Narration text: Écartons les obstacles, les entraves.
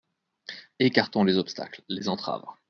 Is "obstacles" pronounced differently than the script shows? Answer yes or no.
no